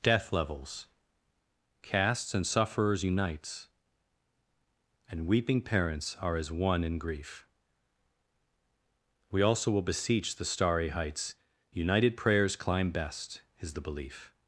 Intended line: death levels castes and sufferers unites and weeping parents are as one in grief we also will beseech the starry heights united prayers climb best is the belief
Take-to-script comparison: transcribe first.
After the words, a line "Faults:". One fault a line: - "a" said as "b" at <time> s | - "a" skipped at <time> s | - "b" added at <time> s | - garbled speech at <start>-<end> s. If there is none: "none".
death levels castes and sufferers unites and weeping parents are as one in grief we also will beseech the starry heights united prayers climb best is the belief
Faults:
none